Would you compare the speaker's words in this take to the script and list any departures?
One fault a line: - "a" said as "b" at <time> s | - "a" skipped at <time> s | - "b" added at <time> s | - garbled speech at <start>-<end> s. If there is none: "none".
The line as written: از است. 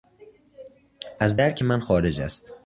- "درک من خارج" added at 1.3 s